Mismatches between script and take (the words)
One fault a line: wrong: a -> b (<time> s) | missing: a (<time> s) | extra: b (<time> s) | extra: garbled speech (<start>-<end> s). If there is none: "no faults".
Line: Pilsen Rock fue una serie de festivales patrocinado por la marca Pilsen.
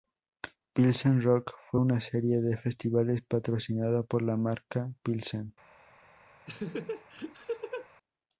no faults